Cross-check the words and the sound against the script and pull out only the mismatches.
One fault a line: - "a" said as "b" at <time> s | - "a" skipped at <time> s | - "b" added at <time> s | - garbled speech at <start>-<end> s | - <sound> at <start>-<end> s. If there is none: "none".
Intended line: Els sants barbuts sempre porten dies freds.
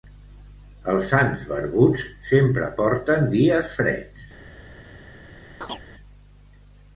- chirp at 5.6-5.8 s